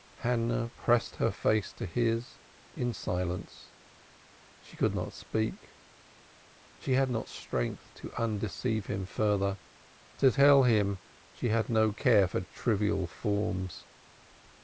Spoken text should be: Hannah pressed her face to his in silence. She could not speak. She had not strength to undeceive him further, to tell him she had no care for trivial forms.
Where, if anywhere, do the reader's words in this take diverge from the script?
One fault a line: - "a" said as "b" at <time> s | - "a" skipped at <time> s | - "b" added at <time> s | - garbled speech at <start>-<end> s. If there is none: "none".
none